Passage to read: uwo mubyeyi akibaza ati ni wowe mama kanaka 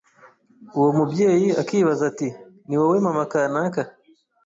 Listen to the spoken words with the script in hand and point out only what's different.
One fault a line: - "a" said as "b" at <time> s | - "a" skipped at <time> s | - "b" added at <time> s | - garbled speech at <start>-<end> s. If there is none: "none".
none